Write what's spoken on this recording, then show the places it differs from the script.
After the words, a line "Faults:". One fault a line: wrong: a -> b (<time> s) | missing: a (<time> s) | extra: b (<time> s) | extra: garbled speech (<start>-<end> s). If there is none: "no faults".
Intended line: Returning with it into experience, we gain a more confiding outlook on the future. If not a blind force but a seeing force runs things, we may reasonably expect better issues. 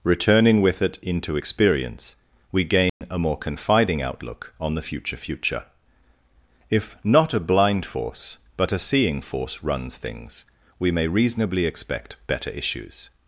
Returning with it into experience, we gain a more confiding outlook on the future future. If not a blind force but a seeing force runs things, we may reasonably expect better issues.
Faults:
extra: future (5.2 s)